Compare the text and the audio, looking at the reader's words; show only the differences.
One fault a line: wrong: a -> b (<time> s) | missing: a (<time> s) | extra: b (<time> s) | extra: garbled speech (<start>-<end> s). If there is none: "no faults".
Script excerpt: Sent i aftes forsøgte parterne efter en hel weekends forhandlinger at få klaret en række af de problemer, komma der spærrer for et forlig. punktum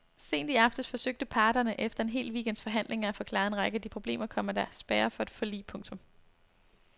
no faults